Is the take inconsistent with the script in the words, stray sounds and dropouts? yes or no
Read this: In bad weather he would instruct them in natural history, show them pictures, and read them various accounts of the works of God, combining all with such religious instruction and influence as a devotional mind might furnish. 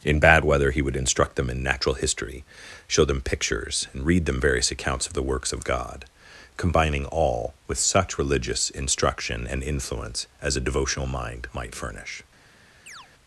yes